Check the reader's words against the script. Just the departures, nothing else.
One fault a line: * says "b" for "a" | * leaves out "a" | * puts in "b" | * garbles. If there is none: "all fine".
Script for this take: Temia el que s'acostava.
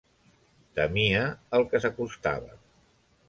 all fine